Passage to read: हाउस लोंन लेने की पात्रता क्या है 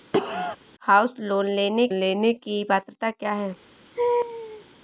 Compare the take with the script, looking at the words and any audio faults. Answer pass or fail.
fail